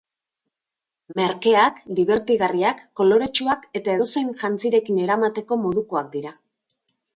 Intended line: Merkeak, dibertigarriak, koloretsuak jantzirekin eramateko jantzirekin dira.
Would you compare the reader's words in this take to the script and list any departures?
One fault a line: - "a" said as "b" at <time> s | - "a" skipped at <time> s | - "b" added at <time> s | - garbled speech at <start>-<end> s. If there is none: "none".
- "eta edozein" added at 3.8 s
- "jantzirekin" said as "modukoak" at 5.7 s